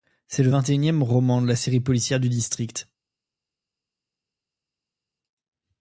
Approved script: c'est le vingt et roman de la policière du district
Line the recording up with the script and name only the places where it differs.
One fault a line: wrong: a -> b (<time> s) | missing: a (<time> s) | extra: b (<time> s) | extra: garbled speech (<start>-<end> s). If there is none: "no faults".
extra: unième (0.7 s)
extra: série (1.6 s)